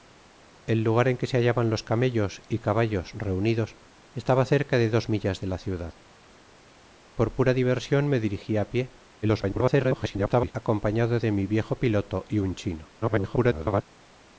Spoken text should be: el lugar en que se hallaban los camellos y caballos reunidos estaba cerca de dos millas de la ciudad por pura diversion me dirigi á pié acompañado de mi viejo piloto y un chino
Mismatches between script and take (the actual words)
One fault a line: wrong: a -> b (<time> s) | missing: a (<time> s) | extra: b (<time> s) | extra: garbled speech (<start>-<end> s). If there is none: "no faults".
extra: garbled speech (9.2-10.5 s)
extra: garbled speech (13.0-13.8 s)